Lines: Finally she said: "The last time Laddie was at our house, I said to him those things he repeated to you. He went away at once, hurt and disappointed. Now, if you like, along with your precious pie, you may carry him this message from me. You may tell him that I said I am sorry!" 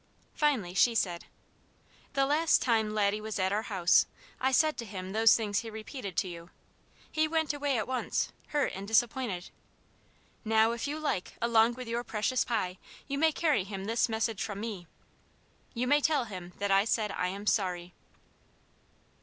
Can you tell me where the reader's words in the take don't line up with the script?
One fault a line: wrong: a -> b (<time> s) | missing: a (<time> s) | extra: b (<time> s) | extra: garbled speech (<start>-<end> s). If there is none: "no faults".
no faults